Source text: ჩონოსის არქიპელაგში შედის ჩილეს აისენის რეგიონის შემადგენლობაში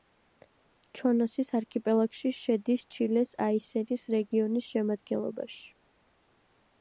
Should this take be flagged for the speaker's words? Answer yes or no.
no